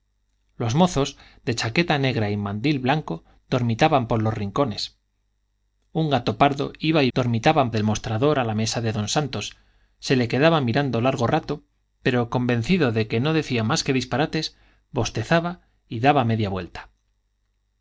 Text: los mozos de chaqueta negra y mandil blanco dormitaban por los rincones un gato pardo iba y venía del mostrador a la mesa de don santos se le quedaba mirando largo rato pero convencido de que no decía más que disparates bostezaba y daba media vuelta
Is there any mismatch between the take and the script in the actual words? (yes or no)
yes